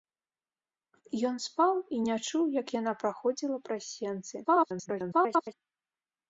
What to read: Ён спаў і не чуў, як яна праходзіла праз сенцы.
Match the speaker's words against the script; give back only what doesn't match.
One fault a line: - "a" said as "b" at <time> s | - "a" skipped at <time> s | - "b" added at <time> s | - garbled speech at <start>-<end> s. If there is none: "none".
- garbled speech at 4.4-5.5 s